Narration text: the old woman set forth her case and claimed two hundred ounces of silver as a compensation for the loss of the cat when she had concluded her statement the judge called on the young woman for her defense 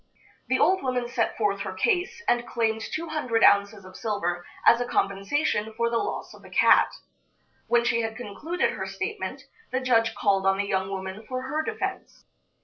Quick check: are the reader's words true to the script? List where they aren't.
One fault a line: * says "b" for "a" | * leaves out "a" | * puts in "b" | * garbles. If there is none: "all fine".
all fine